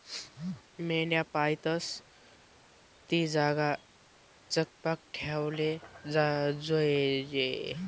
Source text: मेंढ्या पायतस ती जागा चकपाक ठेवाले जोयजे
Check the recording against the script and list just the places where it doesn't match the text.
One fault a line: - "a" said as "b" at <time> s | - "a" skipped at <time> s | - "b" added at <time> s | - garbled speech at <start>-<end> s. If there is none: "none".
none